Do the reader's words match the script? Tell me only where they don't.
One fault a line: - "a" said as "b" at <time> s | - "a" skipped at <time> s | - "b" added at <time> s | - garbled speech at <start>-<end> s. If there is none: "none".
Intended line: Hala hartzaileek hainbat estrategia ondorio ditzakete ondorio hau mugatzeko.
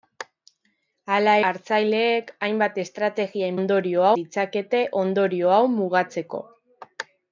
none